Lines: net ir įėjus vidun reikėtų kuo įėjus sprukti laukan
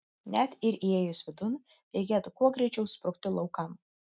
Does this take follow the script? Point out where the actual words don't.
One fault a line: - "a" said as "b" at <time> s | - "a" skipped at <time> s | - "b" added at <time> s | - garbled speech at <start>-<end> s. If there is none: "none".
- "įėjus" said as "greičiau" at 2.6 s